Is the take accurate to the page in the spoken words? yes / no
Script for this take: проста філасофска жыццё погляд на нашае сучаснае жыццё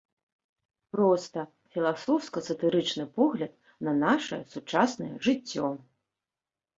no